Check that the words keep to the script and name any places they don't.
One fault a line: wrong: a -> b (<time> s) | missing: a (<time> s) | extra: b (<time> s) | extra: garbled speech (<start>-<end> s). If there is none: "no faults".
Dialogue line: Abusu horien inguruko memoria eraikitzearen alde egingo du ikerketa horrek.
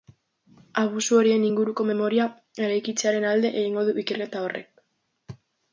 no faults